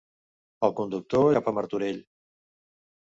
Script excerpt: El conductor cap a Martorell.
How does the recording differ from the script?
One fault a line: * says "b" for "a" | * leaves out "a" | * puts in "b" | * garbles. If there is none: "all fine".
all fine